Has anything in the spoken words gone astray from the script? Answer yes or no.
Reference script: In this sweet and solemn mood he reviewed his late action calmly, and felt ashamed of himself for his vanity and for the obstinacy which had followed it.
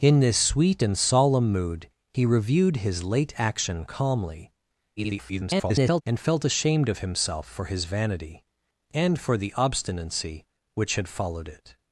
yes